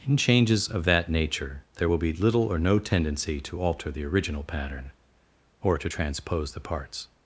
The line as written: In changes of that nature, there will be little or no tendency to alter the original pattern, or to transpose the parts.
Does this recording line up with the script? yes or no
yes